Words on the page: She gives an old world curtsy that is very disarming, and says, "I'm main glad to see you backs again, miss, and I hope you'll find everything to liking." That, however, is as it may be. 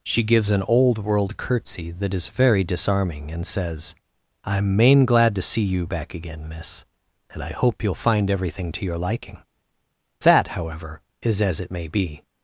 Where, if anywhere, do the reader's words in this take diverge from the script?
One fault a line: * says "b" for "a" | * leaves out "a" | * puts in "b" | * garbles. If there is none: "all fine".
* says "back" for "backs"
* puts in "your"